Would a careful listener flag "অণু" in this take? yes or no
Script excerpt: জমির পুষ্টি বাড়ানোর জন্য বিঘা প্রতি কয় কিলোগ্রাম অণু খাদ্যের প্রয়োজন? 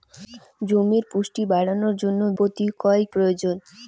yes